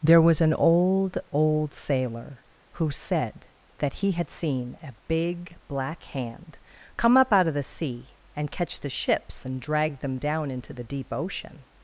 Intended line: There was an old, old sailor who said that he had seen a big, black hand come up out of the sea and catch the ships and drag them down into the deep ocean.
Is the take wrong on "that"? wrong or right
right